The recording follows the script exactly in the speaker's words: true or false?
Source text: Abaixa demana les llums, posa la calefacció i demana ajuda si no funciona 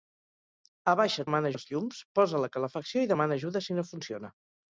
true